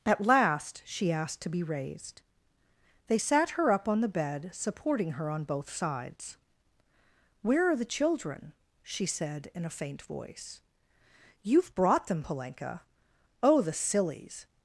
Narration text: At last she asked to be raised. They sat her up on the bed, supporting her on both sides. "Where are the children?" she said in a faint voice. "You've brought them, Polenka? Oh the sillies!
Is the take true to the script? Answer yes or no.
yes